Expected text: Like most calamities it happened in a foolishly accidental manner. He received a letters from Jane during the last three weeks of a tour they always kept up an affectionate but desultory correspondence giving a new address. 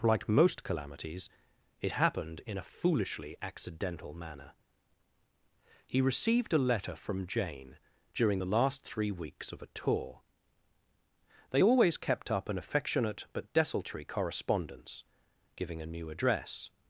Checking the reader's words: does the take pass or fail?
fail